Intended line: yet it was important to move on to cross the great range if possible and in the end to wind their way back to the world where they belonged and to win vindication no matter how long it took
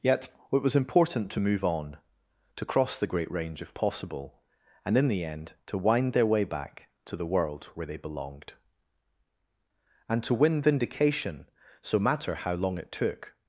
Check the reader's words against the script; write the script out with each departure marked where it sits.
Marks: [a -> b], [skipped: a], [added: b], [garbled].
yet it was important to move on to cross the great range if possible and in the end to wind their way back to the world where they belonged and to win vindication [no -> so] matter how long it took